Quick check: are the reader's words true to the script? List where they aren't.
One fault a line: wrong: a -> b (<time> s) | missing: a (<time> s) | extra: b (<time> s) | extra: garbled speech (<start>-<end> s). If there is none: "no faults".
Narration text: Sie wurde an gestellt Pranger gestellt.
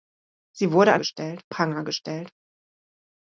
no faults